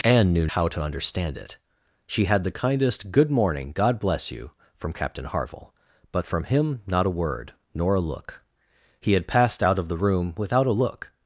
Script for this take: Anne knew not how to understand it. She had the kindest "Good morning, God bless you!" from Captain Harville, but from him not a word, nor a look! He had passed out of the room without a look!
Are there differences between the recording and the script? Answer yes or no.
yes